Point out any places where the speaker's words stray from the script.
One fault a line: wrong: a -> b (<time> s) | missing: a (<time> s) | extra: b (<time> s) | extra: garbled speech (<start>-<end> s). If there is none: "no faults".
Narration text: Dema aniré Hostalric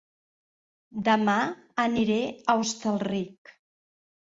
extra: a (2.2 s)